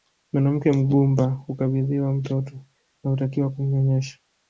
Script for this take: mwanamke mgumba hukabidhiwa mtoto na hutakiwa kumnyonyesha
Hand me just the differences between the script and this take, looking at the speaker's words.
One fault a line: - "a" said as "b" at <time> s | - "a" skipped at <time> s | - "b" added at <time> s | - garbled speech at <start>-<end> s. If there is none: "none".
none